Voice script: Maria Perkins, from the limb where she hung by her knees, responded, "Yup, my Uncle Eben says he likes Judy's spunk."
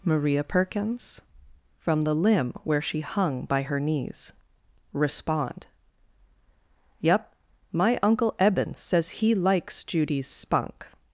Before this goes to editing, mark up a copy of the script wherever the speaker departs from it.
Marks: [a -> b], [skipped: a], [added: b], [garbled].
Maria Perkins, from the limb where she hung by her knees, [responded, -> respond] "Yup, my Uncle Eben says he likes Judy's spunk."